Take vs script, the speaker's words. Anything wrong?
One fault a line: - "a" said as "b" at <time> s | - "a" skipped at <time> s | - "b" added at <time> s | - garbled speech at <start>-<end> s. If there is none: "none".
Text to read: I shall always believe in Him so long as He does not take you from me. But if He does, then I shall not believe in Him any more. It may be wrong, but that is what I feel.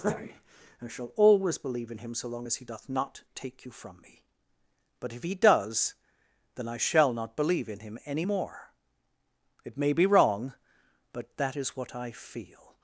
- "does" said as "doth" at 2.6 s